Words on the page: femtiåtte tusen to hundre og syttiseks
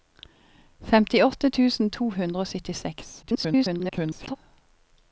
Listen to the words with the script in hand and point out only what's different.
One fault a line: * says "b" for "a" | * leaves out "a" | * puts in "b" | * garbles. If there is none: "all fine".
* garbles